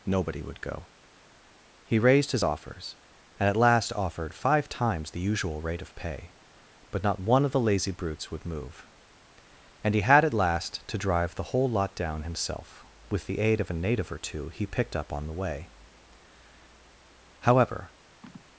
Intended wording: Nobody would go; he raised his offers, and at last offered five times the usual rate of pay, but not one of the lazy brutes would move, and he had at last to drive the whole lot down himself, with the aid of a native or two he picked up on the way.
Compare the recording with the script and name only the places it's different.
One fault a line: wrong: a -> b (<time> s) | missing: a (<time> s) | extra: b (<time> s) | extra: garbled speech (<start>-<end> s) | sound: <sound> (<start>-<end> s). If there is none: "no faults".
extra: However (17.4 s)
sound: sigh (18.2-18.5 s)